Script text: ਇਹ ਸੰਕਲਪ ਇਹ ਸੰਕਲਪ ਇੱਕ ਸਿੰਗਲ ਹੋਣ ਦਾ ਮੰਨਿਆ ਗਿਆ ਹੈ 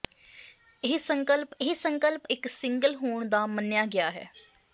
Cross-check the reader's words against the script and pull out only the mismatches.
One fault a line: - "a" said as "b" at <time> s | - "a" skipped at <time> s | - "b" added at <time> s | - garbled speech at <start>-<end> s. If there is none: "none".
none